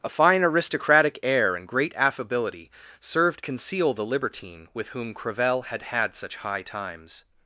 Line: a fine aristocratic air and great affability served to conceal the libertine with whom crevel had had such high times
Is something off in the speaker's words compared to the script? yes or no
yes